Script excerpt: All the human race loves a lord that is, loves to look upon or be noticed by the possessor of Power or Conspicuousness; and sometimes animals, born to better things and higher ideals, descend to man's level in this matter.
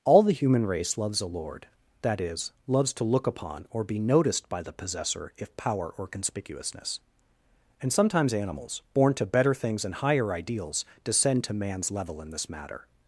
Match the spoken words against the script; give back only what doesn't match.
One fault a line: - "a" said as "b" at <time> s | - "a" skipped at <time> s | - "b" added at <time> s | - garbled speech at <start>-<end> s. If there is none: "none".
- "of" said as "if" at 5.4 s